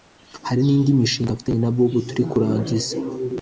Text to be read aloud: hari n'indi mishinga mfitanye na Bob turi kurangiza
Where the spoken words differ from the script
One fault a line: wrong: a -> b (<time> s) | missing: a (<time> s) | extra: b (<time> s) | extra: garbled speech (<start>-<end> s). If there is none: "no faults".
no faults